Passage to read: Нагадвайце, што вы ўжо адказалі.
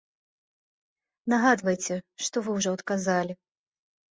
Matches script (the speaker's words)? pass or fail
pass